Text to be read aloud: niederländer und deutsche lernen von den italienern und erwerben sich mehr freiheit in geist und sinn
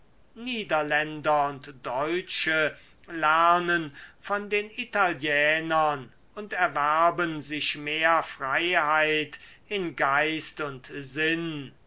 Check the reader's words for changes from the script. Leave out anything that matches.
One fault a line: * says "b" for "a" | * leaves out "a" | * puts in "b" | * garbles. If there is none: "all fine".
all fine